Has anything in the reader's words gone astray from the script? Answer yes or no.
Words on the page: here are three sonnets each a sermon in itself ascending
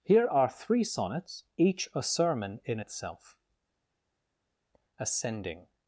no